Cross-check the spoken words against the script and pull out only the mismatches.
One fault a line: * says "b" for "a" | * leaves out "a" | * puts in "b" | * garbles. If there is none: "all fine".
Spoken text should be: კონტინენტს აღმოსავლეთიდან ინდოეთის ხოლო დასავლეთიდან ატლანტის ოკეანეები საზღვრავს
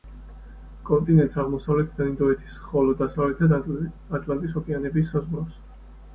all fine